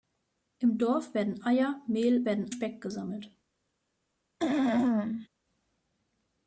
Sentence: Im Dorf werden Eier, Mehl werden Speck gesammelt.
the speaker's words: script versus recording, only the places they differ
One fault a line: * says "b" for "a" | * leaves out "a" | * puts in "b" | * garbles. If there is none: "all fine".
all fine